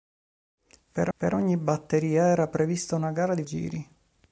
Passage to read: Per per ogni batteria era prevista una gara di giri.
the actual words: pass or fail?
pass